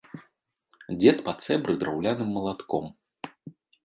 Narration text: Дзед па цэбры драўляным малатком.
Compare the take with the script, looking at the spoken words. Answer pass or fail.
pass